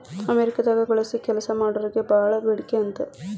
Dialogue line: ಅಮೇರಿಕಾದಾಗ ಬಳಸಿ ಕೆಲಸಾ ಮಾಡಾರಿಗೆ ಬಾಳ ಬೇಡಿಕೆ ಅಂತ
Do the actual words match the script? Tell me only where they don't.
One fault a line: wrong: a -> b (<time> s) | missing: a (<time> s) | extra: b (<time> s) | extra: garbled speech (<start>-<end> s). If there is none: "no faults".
no faults